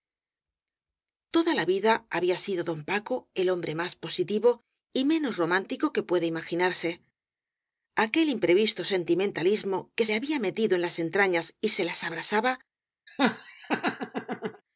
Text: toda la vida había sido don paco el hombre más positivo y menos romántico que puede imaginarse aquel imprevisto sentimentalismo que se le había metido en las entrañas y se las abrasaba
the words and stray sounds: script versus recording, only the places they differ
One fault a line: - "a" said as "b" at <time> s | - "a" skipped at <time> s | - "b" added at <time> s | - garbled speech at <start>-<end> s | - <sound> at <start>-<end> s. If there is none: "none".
- "se" skipped at 10.1 s
- laugh at 13.1-14.6 s